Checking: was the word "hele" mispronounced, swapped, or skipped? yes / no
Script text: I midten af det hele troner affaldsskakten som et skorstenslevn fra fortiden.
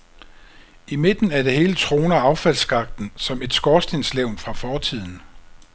no